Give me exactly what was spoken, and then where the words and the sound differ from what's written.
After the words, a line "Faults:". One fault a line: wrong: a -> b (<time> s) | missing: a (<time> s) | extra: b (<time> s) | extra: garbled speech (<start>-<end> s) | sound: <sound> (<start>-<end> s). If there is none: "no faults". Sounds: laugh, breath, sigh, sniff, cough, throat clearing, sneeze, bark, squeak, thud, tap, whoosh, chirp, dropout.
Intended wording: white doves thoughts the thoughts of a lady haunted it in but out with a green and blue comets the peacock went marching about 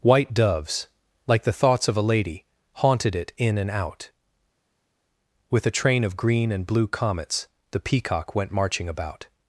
white doves like the thoughts of a lady haunted it in and out with a train of green and blue comets the peacock went marching about
Faults:
wrong: thoughts -> like (1.3 s)
wrong: but -> and (3.6 s)
extra: train of (5.7 s)